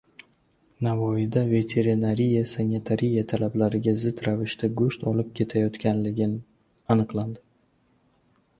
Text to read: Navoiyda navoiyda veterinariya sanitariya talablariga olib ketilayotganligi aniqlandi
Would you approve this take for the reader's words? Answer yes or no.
no